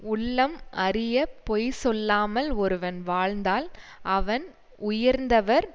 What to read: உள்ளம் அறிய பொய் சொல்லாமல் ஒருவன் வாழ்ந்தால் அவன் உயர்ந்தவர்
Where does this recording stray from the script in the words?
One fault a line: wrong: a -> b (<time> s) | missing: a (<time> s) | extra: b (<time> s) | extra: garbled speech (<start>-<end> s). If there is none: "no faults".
no faults